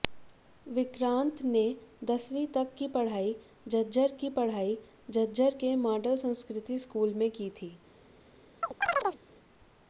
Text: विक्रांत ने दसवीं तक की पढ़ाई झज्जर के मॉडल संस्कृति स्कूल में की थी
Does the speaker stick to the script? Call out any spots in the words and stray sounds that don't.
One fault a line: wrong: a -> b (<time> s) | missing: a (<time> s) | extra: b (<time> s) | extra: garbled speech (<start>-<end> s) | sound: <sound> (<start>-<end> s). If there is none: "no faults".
extra: की पढ़ाई झज्जर (4.2 s)
sound: chirp (8.6-9.2 s)